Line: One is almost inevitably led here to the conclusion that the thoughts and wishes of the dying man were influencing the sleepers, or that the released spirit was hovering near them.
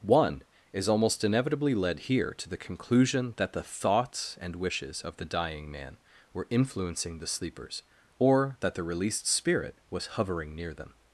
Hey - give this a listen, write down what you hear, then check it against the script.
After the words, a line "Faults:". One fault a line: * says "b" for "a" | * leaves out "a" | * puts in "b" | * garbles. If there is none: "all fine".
One is almost inevitably led here to the conclusion that the thoughts and wishes of the dying man were influencing the sleepers, or that the released spirit was hovering near them.
Faults:
all fine